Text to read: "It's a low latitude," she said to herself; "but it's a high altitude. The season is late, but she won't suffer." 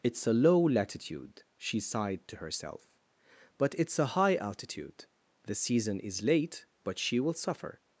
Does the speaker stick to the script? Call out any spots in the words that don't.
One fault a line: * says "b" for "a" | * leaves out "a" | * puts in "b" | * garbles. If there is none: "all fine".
* says "sighed" for "said"
* says "will" for "won't"